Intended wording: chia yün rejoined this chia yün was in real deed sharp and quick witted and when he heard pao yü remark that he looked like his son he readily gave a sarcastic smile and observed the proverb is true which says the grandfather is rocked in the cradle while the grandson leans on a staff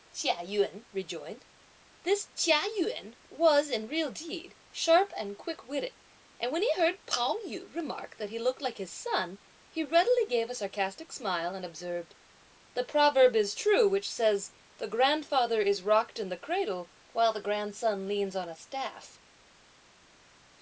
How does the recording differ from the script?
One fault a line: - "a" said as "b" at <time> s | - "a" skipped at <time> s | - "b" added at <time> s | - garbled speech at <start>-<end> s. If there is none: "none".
none